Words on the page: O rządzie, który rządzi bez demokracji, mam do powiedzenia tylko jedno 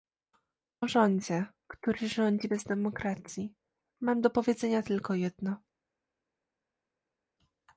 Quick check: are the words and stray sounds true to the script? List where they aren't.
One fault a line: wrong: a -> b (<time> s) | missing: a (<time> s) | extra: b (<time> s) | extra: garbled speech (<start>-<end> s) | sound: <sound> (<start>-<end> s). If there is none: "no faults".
no faults